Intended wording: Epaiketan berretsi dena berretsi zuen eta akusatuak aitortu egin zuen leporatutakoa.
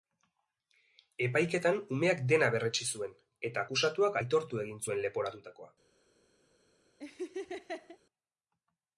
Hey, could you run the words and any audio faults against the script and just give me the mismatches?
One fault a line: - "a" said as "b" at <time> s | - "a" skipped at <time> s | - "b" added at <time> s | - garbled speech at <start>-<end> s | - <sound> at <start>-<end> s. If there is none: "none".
- "berretsi" said as "umeak" at 2.0 s
- laugh at 7.0-8.0 s